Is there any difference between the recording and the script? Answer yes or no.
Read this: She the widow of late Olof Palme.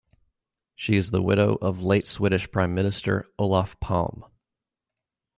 yes